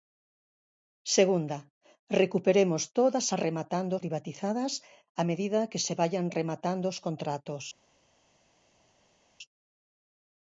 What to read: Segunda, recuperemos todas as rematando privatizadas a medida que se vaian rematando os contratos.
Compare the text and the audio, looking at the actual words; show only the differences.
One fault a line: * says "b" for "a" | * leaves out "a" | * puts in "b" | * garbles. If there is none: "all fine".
all fine